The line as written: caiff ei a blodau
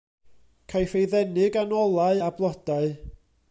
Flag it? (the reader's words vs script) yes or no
yes